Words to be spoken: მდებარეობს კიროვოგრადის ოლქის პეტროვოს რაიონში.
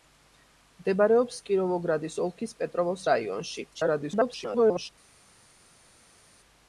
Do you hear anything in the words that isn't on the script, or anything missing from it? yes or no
yes